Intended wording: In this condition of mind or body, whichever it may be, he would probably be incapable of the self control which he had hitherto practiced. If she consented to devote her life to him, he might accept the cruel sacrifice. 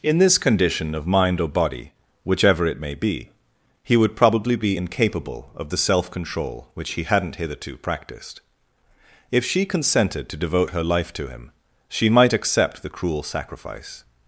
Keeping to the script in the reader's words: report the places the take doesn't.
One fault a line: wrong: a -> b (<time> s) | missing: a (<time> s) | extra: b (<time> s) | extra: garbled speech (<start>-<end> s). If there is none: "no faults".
wrong: had -> hadn't (7.0 s)
wrong: he -> she (11.9 s)